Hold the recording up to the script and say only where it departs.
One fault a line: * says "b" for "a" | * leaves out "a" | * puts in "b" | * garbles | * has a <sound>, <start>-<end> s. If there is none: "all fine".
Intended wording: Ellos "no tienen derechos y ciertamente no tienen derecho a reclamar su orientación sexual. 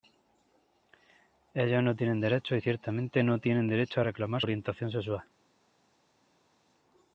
* leaves out "su"